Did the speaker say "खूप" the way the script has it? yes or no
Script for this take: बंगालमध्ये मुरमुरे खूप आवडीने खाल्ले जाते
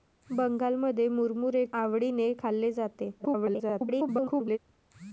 no